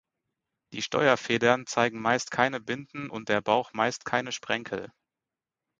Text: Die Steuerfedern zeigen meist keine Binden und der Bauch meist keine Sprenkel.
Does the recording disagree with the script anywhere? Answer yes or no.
no